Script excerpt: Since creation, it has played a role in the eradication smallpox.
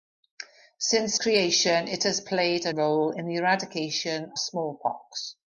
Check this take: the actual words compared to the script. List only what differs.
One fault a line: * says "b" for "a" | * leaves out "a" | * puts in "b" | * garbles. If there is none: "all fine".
all fine